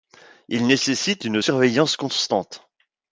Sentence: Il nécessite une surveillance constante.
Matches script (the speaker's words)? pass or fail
pass